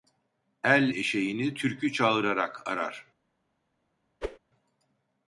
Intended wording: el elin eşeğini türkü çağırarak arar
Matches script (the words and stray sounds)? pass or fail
fail